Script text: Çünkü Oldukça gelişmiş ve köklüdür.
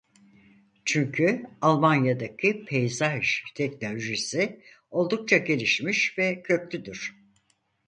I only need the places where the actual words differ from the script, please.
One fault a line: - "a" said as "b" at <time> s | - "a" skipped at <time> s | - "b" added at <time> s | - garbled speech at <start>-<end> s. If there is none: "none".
- "Almanya'daki peyzaj teknolojisi" added at 1.6 s